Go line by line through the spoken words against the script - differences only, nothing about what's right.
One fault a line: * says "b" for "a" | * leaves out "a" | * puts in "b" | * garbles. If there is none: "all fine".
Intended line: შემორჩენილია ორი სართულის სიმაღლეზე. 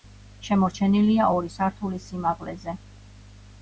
all fine